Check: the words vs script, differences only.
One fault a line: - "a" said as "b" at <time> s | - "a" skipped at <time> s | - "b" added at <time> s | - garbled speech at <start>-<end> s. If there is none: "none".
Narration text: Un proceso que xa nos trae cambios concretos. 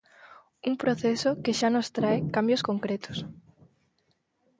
none